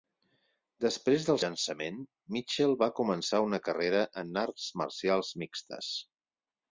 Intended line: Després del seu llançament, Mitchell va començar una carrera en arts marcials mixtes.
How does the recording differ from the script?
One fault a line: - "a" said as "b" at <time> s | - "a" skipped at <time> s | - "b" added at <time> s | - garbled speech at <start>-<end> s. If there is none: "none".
- "seu" skipped at 1.4 s